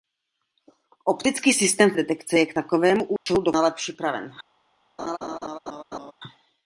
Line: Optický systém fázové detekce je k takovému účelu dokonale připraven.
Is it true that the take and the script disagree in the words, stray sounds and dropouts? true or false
true